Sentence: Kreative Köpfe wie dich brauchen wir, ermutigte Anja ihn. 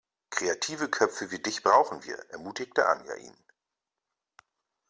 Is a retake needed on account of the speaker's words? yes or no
no